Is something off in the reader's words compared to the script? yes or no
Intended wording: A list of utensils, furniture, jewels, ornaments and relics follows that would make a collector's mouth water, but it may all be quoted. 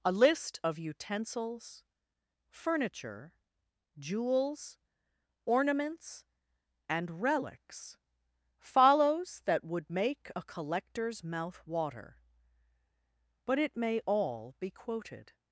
no